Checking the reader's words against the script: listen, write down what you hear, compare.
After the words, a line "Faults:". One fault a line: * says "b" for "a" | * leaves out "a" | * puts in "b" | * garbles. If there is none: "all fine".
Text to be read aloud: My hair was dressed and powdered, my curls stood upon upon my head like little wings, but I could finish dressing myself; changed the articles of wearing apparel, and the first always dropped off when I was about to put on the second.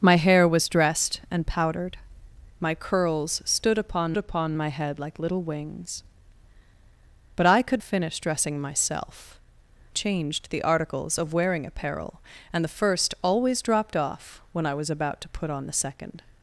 My hair was dressed and powdered, my curls stood upon upon my head like little wings, but I could finish dressing myself; changed the articles of wearing apparel, and the first always dropped off when I was about to put on the second.
Faults:
all fine